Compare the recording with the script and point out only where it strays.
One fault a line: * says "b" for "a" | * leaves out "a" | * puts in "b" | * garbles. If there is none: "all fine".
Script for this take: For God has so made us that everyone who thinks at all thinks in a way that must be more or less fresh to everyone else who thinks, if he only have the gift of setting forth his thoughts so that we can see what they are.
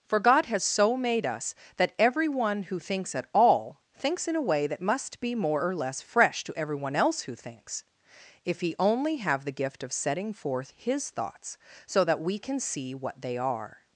all fine